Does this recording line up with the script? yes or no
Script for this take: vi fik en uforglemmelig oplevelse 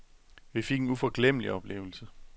yes